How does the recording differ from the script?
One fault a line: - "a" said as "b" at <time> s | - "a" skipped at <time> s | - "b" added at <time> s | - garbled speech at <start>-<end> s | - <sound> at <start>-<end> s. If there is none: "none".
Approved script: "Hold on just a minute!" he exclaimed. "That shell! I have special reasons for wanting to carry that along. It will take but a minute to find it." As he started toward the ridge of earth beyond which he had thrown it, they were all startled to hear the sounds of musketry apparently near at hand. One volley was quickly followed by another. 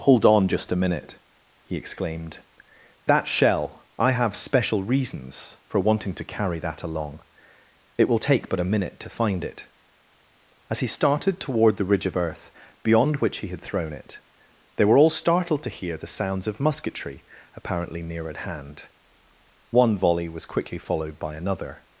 none